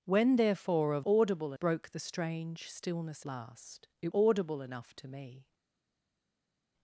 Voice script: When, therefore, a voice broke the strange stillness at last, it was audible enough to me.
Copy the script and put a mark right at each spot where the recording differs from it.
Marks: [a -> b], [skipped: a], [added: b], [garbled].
When, therefore, a [voice -> audible] broke the strange stillness [skipped: at] last, it [skipped: was] audible enough to me.